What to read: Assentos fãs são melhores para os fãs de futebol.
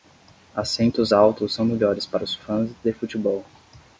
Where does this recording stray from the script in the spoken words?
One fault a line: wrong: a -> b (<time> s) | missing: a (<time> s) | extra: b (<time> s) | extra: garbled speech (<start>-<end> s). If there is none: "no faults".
wrong: fãs -> altos (1.1 s)